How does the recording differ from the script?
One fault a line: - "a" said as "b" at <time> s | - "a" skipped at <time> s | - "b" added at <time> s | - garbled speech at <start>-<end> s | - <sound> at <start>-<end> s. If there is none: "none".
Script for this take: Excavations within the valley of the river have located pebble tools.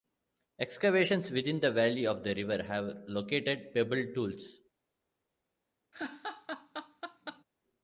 - laugh at 5.9-7.4 s